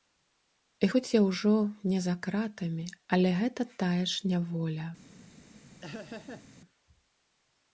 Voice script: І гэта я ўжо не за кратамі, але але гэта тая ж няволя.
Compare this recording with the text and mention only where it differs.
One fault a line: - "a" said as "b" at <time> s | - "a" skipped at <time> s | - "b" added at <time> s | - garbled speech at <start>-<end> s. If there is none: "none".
- "гэта" said as "хоць" at 0.9 s
- "але" skipped at 3.3 s